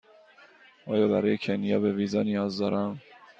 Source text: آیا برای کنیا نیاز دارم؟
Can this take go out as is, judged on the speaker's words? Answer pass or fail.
fail